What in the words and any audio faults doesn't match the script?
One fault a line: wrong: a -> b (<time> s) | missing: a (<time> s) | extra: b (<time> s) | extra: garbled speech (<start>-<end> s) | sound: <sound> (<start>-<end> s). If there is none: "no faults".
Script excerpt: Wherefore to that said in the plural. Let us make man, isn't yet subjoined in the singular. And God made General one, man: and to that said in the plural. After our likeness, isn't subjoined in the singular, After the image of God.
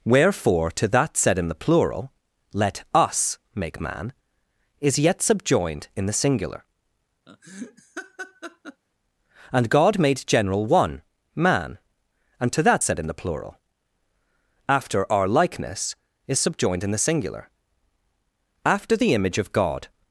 wrong: isn't -> is (4.8 s)
sound: laugh (7.3-8.8 s)
wrong: isn't -> is (16.3 s)